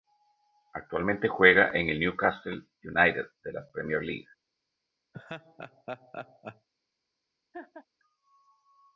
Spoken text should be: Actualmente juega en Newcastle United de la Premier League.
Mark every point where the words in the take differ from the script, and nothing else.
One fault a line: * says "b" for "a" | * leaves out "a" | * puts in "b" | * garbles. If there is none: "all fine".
* puts in "el"